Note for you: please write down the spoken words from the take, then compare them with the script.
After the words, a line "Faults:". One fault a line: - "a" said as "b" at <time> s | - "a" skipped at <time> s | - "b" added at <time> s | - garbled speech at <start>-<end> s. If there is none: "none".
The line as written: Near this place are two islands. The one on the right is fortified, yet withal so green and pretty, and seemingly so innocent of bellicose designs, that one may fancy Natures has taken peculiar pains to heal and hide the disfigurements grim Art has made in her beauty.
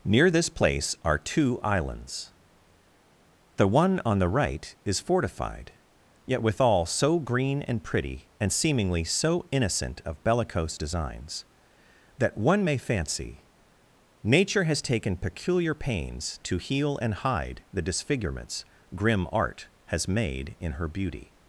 Near this place are two islands. The one on the right is fortified, yet withal so green and pretty, and seemingly so innocent of bellicose designs, that one may fancy Nature has taken peculiar pains to heal and hide the disfigurements grim Art has made in her beauty.
Faults:
- "Natures" said as "Nature" at 14.2 s